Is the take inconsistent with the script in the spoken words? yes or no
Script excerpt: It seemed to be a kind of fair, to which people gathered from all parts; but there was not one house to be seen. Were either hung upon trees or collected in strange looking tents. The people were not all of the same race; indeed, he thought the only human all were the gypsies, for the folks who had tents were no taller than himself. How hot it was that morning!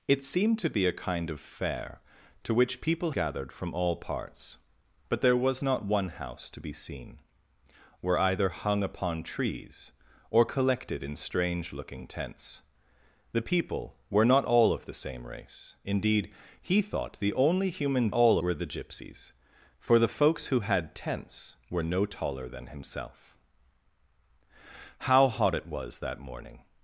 no